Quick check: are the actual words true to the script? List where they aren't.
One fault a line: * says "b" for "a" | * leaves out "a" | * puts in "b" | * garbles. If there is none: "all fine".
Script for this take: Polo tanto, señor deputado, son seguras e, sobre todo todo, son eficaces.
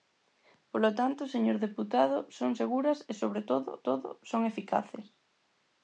all fine